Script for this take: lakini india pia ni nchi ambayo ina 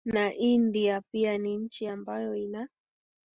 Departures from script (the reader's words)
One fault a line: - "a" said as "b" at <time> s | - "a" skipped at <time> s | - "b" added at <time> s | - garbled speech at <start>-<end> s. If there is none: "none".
- "lakini" said as "na" at 0.1 s